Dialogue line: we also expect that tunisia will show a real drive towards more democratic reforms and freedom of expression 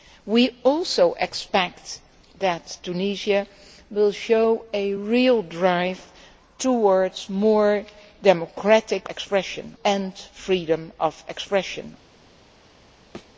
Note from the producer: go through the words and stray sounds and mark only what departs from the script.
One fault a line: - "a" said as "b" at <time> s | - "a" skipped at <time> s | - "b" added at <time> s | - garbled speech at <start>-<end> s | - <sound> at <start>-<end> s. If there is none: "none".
- "reforms" said as "expression" at 9.1 s
- thud at 13.1-13.3 s